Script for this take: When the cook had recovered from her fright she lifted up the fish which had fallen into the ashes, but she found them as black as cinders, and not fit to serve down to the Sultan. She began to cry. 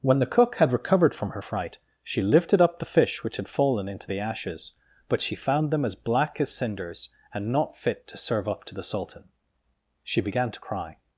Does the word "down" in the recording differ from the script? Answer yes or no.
yes